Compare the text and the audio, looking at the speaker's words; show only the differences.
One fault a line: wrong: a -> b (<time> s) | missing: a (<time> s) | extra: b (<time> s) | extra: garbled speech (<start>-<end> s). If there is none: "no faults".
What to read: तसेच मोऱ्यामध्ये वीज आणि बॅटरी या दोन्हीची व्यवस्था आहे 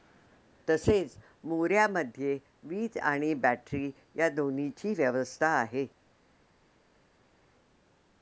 no faults